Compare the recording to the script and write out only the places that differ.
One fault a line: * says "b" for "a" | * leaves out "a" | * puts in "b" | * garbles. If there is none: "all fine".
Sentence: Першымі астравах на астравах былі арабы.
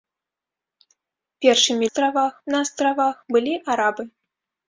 all fine